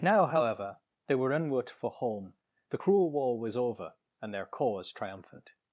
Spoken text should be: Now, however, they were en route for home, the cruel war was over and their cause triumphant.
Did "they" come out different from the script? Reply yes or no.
no